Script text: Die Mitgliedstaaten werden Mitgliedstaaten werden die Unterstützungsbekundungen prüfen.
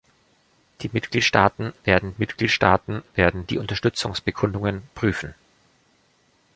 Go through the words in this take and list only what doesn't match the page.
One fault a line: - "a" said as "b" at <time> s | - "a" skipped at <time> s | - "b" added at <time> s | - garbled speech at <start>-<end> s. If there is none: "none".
none